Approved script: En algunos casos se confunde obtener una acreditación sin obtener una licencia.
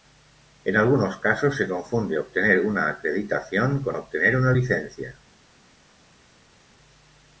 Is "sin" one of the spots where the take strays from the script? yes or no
yes